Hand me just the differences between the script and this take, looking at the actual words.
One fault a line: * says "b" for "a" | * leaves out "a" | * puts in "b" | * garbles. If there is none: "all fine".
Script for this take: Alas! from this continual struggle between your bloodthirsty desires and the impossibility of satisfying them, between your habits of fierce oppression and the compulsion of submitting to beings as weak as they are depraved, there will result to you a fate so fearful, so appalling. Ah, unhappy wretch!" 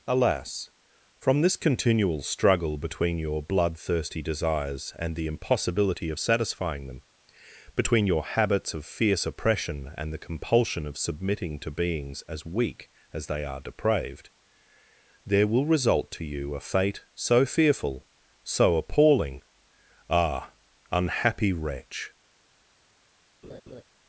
all fine